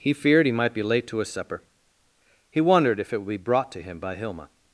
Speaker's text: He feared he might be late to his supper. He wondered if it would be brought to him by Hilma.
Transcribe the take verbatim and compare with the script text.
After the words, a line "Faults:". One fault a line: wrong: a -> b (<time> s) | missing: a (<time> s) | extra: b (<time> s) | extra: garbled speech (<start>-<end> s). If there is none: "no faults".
He feared he might be late to his supper. He wondered if it would be brought to him by Hilma.
Faults:
no faults